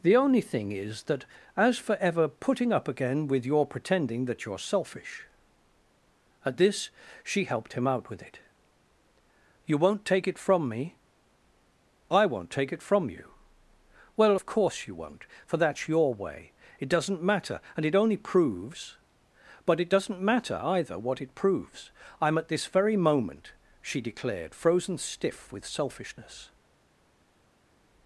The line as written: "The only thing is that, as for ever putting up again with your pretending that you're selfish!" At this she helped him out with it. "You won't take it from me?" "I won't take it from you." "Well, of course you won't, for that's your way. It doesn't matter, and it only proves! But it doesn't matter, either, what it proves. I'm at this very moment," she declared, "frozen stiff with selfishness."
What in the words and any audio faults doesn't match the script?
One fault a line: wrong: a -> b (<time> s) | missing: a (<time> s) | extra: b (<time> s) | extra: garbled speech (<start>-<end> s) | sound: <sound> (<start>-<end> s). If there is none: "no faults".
no faults